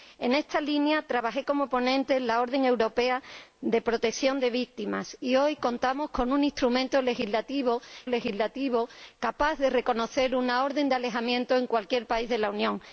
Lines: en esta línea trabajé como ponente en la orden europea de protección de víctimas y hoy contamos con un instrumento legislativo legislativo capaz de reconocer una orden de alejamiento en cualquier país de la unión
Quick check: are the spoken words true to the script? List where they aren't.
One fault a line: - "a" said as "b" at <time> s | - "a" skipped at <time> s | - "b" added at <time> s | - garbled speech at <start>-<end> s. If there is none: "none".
none